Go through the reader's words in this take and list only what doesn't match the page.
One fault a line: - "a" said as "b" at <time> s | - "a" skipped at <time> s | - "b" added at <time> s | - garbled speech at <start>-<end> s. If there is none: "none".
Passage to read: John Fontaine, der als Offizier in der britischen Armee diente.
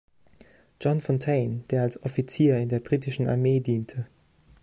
none